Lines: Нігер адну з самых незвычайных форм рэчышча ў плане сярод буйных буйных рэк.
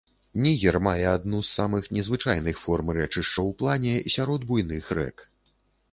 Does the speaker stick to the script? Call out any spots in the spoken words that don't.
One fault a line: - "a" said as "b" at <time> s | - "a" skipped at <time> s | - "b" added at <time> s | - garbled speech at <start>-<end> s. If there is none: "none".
- "мае" added at 0.9 s
- "буйных" skipped at 4.8 s